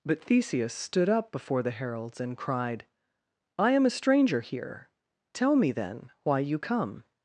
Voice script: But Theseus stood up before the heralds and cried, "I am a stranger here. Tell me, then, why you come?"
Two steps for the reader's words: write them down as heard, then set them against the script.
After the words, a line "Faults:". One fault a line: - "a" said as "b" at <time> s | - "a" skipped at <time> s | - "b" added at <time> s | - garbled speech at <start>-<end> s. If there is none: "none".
But Theseus stood up before the heralds and cried, "I am a stranger here. Tell me, then, why you come?"
Faults:
none